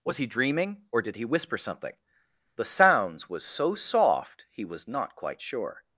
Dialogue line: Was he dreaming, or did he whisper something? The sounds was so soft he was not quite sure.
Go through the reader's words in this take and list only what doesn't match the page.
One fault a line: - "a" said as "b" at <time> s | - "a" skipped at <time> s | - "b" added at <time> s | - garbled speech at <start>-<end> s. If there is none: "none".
none